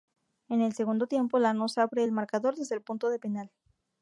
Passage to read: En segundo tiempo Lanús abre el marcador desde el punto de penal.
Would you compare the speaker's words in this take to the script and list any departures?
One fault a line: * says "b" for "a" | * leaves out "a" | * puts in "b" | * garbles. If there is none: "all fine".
* puts in "el"